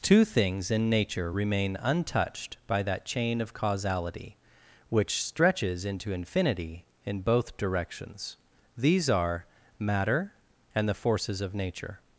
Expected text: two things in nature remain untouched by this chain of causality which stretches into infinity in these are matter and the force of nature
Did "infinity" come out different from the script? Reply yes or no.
no